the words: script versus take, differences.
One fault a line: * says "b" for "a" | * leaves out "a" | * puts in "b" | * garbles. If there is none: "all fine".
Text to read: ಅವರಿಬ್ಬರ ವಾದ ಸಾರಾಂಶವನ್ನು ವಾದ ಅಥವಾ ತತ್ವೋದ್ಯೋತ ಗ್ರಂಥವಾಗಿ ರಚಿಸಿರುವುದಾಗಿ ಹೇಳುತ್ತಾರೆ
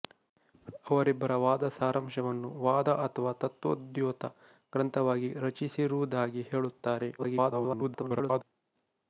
* garbles